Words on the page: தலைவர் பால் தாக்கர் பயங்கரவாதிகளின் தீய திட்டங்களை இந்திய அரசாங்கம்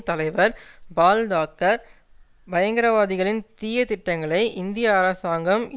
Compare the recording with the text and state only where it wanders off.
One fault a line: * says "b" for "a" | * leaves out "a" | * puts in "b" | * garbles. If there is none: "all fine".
all fine